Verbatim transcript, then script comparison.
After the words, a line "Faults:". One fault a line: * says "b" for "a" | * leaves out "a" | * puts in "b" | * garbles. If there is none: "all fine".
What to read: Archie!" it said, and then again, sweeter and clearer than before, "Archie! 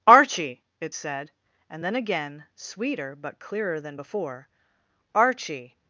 Archie!" it said, and then again, sweeter but clearer than before, "Archie!
Faults:
* says "but" for "and"